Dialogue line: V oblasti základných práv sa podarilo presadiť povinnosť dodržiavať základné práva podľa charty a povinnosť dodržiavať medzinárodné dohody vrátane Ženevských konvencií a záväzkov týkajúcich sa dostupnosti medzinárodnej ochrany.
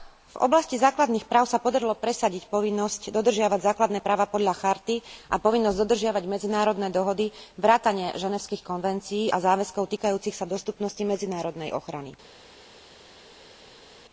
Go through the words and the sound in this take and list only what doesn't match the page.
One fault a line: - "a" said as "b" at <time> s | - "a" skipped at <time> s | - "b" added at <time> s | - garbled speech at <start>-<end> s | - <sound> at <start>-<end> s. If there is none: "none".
none